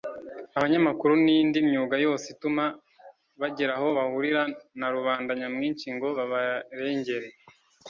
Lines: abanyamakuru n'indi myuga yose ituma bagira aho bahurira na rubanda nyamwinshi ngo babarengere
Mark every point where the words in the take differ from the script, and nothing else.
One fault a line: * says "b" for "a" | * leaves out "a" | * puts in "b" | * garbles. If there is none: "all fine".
all fine